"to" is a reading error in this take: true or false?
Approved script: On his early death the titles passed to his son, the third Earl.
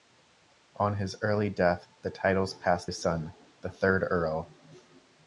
true